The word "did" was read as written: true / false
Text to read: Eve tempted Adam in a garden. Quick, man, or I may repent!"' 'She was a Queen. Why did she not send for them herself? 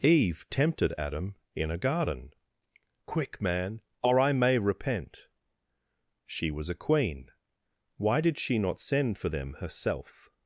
true